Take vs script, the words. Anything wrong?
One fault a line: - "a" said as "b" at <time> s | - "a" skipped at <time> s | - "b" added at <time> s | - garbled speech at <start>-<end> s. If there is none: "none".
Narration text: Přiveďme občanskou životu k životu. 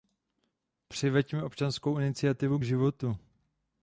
- "životu" said as "iniciativu" at 2.0 s